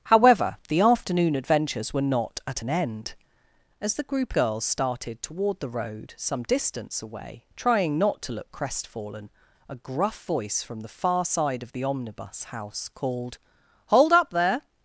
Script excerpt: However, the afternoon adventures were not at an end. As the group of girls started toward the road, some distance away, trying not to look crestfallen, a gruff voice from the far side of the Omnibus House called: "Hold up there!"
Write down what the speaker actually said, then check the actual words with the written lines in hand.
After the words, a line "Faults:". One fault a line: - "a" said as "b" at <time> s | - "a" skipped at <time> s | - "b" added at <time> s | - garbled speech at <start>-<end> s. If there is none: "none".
However, the afternoon adventures were not at an end. As the group girls started toward the road, some distance away, trying not to look crestfallen, a gruff voice from the far side of the Omnibus House called: "Hold up there!"
Faults:
- "of" skipped at 4.3 s